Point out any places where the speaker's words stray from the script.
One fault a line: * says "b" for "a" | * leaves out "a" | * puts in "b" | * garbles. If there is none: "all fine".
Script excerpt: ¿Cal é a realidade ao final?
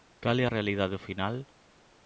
all fine